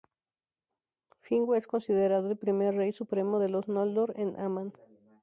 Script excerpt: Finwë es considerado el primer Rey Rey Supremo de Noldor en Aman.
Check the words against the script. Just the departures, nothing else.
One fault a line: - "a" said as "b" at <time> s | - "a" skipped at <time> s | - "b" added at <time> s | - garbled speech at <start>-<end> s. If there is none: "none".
- "Rey" skipped at 2.9 s
- "los" added at 3.5 s